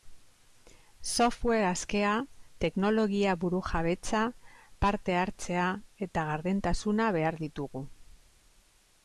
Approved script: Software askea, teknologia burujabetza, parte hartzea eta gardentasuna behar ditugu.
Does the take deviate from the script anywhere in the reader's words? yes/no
no